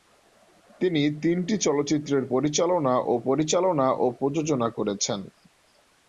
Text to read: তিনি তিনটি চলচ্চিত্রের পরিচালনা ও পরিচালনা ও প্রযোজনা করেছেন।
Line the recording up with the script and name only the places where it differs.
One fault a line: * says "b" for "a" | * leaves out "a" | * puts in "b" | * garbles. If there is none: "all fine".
all fine